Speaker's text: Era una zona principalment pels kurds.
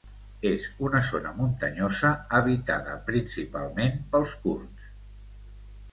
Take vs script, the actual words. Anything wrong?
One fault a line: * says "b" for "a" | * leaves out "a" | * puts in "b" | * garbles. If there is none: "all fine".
* says "És" for "Era"
* puts in "muntanyosa habitada"